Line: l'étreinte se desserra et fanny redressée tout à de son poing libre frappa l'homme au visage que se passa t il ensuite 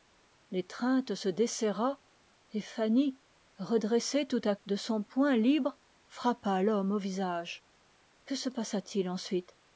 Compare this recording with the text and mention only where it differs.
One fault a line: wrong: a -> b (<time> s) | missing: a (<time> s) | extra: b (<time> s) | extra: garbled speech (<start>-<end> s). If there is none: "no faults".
no faults